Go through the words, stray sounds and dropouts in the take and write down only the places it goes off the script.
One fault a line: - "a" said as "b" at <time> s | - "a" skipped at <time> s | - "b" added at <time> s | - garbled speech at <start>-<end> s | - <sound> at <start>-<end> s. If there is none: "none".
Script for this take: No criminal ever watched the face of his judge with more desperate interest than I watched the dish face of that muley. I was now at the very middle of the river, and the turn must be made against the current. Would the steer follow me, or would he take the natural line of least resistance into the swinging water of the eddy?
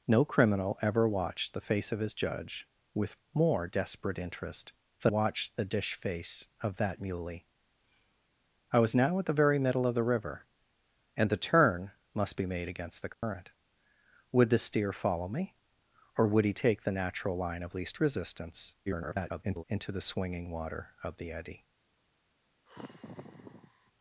- "I" skipped at 5.1 s
- dropout at 13.1-13.2 s
- garbled speech at 18.9-19.6 s
- sigh at 22.7-23.9 s